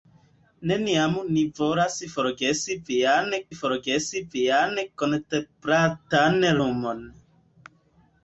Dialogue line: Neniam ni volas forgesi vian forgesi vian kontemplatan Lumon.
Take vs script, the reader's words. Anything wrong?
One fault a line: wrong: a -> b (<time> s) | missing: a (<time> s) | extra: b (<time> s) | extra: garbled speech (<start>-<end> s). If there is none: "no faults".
no faults